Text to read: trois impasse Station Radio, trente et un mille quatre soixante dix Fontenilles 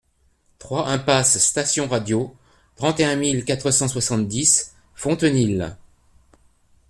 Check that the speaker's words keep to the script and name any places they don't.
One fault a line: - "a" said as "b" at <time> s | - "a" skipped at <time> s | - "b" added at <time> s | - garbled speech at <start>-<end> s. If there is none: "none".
- "cent" added at 3.7 s